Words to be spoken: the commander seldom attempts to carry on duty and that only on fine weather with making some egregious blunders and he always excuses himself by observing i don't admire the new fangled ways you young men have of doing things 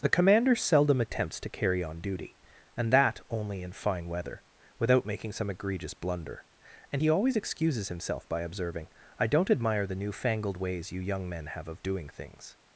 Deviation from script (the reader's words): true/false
true